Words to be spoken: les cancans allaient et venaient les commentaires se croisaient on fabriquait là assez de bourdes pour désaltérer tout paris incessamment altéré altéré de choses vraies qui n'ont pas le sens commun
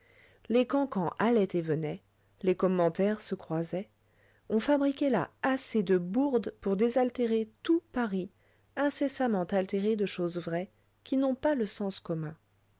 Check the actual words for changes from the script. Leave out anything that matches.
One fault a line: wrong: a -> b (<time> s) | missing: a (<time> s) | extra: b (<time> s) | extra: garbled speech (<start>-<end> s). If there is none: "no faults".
missing: altéré (9.9 s)